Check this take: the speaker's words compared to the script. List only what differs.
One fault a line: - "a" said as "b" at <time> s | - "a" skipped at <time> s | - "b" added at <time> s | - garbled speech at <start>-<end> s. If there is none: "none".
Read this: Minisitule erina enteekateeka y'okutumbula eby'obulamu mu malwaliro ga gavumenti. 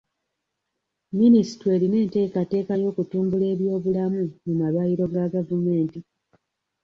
none